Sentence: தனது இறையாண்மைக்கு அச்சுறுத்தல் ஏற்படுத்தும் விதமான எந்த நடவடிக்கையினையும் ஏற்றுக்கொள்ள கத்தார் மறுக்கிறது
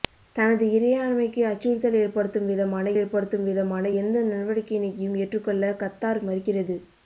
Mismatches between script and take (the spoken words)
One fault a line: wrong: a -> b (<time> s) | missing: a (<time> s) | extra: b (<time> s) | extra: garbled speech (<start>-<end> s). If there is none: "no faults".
extra: ஏற்படுத்தும் விதமான (3.0 s)